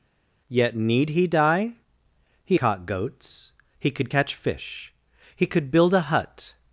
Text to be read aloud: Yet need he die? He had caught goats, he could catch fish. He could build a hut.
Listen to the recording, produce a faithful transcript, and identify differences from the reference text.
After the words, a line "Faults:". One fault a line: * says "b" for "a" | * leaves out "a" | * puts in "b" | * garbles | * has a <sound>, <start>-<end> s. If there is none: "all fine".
Yet need he die? He caught goats, he could catch fish. He could build a hut.
Faults:
* leaves out "had"